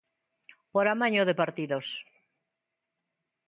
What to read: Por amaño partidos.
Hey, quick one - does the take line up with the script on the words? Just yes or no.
no